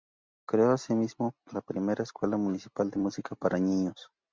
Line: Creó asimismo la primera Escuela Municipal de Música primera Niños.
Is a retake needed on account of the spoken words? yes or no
yes